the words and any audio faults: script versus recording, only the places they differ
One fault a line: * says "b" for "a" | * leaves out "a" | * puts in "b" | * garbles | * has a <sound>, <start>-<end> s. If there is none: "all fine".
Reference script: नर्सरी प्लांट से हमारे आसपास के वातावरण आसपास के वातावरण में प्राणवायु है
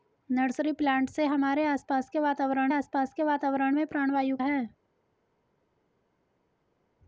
all fine